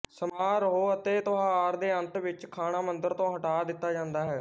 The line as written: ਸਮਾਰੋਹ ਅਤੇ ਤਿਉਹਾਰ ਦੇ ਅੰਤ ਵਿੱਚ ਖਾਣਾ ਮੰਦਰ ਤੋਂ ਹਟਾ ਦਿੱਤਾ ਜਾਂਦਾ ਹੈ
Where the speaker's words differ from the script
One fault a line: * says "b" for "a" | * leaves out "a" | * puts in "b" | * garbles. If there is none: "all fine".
all fine